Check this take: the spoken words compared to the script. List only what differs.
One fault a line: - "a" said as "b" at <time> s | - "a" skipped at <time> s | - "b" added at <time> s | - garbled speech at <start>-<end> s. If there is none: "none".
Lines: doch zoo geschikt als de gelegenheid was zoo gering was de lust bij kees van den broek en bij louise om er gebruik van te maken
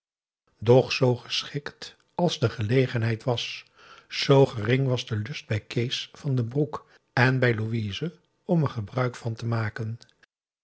none